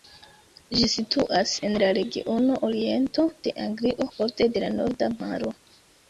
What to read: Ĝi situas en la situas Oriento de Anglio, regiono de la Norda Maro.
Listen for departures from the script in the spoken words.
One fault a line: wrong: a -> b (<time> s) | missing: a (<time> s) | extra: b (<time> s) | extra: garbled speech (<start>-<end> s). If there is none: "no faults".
wrong: situas -> regiono (2.0 s)
wrong: regiono -> borde (4.2 s)